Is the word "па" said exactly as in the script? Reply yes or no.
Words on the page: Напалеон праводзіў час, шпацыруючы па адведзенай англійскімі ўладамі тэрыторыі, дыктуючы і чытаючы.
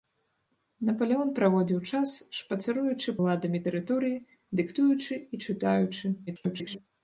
no